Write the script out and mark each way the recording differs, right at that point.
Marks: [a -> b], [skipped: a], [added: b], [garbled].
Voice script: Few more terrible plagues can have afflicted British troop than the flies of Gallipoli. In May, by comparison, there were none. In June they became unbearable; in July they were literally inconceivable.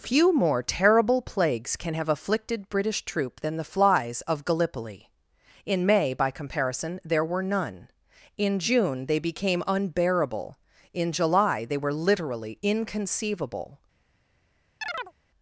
Few more terrible plagues can have afflicted British troop than the flies of Gallipoli. In May, by comparison, there were none. In June they became unbearable; in July they were literally inconceivable.